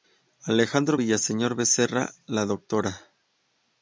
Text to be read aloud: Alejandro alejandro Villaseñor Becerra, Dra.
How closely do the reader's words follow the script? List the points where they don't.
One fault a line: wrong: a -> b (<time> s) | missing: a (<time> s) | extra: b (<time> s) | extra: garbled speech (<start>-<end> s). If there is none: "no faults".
missing: alejandro (1.0 s)
extra: la (2.3 s)